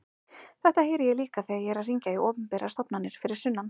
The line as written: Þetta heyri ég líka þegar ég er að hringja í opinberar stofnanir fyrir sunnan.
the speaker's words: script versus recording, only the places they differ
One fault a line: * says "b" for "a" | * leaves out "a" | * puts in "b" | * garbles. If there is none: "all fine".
all fine